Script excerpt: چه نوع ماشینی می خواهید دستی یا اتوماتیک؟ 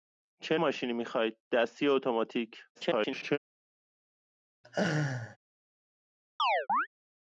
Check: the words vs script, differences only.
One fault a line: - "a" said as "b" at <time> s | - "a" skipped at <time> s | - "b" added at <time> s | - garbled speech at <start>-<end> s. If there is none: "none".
- "نوع" skipped at 0.6 s
- garbled speech at 2.7-3.4 s